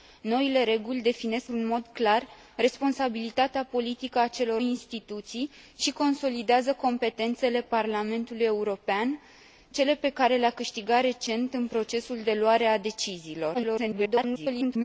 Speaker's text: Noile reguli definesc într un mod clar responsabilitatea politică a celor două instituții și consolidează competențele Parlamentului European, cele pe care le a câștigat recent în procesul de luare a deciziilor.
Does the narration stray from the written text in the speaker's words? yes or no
yes